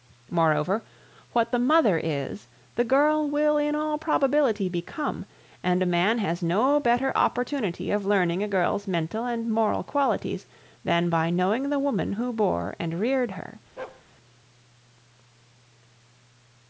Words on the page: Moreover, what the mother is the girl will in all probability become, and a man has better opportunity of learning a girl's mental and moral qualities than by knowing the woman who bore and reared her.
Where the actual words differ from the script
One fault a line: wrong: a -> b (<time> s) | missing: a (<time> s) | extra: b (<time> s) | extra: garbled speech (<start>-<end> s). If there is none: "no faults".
extra: no (6.4 s)